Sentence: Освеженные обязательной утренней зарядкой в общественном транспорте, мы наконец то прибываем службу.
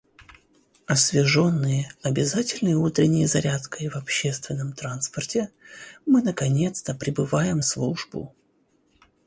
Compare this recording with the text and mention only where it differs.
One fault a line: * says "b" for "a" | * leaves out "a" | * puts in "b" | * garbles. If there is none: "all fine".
all fine